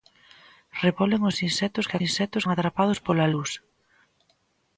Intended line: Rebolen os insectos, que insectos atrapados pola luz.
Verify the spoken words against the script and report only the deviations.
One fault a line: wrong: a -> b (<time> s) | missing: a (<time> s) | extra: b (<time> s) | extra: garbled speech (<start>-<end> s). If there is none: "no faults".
no faults